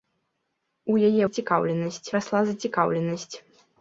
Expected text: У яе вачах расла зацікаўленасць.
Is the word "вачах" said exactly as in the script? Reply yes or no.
no